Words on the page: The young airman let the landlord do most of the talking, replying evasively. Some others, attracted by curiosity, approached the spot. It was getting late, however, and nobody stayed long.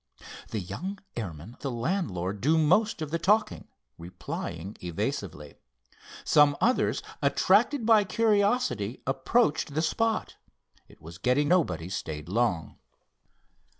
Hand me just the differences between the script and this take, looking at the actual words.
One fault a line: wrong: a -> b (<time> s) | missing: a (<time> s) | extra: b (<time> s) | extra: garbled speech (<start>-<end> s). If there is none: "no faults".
missing: let (1.6 s)
missing: late however and (11.5 s)